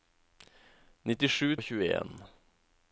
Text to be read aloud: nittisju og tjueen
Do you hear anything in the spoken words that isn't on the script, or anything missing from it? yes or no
no